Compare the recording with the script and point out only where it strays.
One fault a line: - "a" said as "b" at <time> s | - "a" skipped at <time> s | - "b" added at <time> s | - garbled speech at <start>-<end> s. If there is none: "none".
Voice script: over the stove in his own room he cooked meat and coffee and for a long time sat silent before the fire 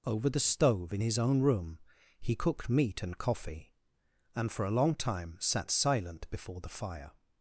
none